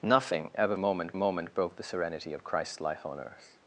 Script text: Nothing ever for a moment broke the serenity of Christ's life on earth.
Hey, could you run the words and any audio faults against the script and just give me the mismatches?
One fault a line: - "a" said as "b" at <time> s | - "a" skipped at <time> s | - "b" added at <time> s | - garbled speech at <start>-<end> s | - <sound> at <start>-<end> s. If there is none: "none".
- "for" said as "moment" at 0.8 s